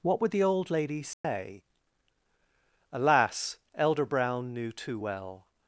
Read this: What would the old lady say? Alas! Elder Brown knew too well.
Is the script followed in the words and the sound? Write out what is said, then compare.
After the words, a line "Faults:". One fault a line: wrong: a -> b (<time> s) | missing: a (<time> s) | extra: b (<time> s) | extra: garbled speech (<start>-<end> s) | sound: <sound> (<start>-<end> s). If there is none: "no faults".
What would the old lady say? Alas! Elder Brown knew too well.
Faults:
sound: dropout (1.1-1.2 s)